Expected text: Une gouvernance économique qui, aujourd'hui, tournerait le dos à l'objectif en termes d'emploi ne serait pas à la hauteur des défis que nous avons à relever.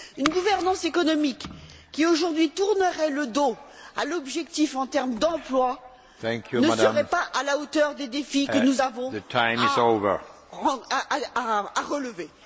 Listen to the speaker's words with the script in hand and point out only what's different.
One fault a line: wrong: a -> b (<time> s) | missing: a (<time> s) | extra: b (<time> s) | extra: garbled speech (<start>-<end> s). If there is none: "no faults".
no faults